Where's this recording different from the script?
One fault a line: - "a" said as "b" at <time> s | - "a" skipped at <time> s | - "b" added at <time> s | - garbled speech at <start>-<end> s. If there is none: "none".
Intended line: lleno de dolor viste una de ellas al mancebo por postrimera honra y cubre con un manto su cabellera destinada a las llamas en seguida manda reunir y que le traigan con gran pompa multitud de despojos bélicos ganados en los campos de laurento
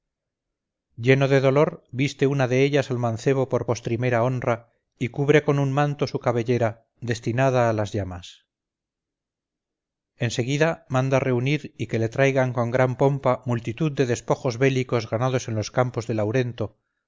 none